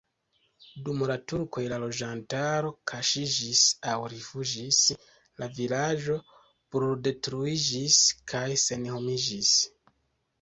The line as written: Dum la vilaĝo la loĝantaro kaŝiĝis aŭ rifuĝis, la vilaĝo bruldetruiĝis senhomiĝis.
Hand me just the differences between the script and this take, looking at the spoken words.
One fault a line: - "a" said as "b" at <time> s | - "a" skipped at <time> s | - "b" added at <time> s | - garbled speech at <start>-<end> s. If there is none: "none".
- "vilaĝo" said as "turkoj" at 1.3 s
- "kaj" added at 8.3 s